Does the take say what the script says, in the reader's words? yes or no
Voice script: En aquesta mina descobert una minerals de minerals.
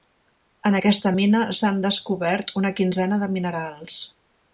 no